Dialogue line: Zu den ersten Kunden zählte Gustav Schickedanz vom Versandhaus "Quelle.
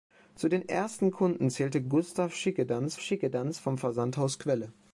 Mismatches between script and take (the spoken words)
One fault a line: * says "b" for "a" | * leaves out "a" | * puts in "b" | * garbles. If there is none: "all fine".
* puts in "Schickedanz"